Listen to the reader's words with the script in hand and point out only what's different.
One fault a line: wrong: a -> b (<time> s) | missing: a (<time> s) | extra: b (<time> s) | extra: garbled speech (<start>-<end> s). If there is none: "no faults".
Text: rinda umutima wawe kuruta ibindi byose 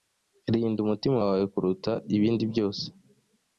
no faults